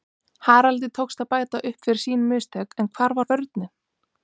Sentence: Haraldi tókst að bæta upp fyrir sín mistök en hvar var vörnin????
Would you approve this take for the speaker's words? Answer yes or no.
yes